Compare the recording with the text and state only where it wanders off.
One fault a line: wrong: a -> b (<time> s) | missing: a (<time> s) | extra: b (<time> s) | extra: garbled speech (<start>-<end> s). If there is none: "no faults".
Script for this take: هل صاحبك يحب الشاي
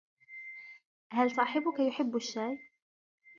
no faults